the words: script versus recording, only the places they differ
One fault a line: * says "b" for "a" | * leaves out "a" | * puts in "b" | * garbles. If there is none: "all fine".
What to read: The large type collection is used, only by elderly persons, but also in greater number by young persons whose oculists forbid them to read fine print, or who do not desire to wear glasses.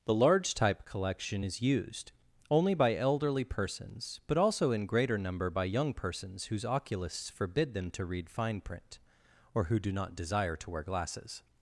all fine